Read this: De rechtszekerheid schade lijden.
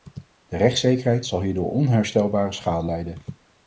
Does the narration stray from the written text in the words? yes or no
yes